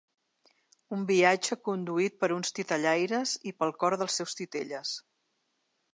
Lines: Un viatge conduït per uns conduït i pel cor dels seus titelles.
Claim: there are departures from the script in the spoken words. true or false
true